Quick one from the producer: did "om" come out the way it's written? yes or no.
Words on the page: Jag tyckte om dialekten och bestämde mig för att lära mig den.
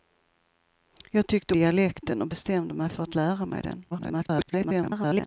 no